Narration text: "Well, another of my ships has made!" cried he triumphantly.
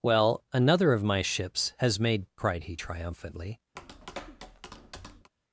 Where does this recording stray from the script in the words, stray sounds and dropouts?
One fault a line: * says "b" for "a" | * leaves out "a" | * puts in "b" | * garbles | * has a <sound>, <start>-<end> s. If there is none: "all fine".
* has a tap, 3.8-5.3 s